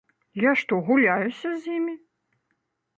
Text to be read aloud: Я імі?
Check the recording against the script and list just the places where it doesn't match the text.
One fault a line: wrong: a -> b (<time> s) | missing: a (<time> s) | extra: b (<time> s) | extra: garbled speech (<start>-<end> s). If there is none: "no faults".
extra: што гуляюся з (0.6 s)